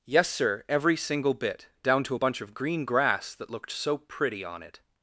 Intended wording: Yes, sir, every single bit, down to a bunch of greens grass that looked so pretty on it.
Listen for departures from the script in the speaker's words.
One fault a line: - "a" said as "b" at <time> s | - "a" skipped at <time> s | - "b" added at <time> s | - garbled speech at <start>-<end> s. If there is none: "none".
- "greens" said as "green" at 2.5 s